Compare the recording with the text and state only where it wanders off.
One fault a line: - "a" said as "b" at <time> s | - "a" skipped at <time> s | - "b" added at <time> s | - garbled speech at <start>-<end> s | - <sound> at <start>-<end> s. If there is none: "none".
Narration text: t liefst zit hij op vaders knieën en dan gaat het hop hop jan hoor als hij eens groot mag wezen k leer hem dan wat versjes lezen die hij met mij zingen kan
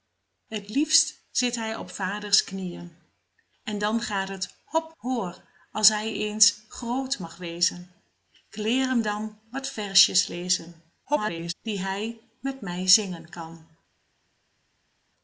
- "hop jan" skipped at 4.9 s
- garbled speech at 11.0-11.5 s